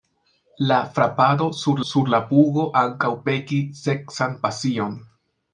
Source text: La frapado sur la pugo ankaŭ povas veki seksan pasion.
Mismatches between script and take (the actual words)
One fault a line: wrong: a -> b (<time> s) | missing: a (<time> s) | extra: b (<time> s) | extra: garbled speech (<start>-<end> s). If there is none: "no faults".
extra: sur (1.9 s)
missing: povas (3.1 s)